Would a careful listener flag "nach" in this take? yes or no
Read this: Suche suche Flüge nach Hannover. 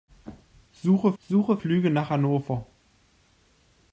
no